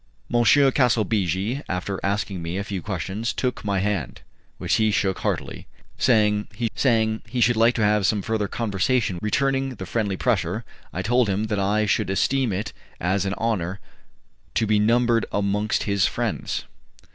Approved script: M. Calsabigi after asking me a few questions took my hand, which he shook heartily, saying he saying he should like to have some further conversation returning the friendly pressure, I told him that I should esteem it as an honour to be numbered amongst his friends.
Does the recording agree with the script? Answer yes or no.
yes